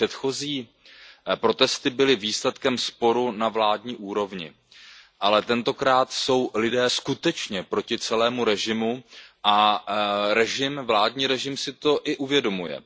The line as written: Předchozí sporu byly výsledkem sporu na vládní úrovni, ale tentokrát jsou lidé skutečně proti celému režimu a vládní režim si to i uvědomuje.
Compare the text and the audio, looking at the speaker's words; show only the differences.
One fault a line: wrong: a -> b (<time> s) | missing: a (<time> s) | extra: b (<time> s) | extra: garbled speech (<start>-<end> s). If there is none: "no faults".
wrong: sporu -> protesty (1.4 s)